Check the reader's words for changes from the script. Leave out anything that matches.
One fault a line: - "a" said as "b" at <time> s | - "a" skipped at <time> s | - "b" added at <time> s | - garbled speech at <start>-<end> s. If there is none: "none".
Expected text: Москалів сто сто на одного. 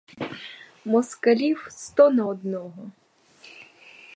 - "сто" skipped at 2.1 s